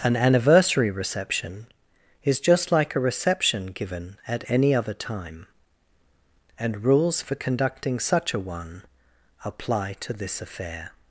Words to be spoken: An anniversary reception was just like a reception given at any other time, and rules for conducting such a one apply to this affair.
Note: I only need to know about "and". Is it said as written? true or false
true